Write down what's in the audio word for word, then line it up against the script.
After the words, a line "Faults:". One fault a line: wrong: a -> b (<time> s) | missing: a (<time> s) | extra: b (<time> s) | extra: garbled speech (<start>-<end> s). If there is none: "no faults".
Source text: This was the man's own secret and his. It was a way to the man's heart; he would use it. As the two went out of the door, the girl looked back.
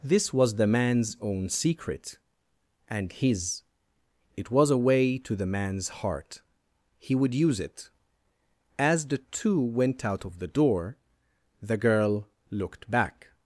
This was the man's own secret and his. It was a way to the man's heart; he would use it. As the two went out of the door, the girl looked back.
Faults:
no faults